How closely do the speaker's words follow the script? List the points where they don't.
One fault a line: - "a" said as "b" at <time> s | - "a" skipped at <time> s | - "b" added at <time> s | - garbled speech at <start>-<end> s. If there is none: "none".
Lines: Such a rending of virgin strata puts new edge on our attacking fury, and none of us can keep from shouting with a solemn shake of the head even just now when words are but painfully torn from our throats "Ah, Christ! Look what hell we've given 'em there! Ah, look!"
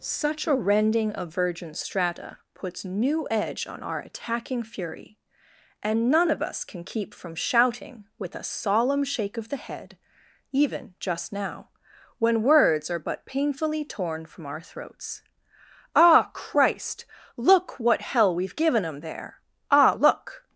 none